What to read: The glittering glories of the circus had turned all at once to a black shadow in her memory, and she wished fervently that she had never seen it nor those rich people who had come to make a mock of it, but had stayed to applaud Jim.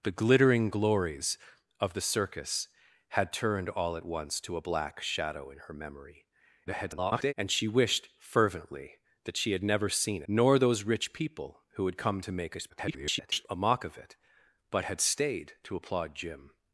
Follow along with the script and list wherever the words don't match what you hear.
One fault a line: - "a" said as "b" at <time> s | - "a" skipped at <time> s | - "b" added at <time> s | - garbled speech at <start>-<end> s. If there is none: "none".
- garbled speech at 6.7-7.3 s
- "it" skipped at 10.2 s
- garbled speech at 12.7-13.5 s